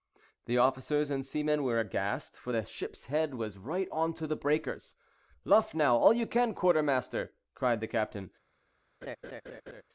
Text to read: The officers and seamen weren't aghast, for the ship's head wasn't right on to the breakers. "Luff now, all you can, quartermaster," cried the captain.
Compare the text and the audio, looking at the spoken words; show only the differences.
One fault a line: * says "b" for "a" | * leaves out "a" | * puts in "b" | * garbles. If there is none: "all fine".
* says "were" for "weren't"
* says "was" for "wasn't"